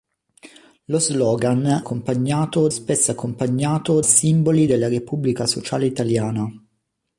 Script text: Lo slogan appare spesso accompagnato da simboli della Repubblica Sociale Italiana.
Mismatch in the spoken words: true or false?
true